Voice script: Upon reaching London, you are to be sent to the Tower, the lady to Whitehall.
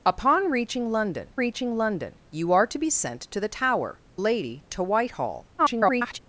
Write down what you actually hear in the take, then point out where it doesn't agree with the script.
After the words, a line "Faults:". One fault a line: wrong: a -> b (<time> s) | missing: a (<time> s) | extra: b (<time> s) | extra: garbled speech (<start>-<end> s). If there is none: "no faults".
Upon reaching London reaching London, you are to be sent to the Tower, lady to Whitehall. [garbled]
Faults:
extra: reaching London (1.3 s)
missing: the (4.0 s)
extra: garbled speech (5.6-6.2 s)